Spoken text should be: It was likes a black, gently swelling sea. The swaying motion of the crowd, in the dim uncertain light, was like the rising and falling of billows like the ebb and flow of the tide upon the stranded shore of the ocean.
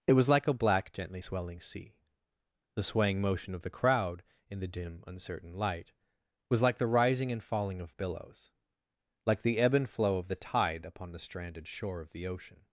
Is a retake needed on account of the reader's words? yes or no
yes